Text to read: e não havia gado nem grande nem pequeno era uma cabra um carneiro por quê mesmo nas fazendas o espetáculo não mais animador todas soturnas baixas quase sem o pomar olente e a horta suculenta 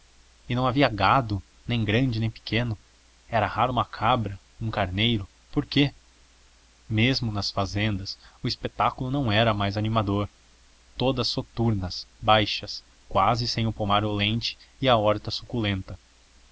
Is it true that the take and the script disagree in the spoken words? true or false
true